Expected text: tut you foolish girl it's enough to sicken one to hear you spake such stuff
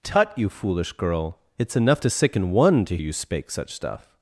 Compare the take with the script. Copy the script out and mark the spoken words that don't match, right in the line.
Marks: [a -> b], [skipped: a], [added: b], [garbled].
tut you foolish girl it's enough to sicken one to [skipped: hear] you spake such stuff